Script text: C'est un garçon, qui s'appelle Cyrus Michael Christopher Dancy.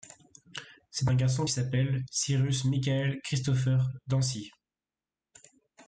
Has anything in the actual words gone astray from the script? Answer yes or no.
yes